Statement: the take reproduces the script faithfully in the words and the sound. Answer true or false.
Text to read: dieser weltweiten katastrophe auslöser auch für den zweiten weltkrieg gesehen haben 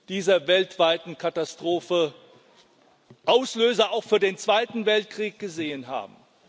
true